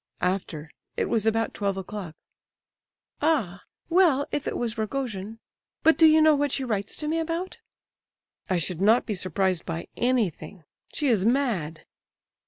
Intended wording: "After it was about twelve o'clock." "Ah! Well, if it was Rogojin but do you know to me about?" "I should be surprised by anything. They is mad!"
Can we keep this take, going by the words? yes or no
no